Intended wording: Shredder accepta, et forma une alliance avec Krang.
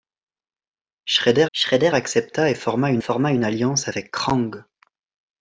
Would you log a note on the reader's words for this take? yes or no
yes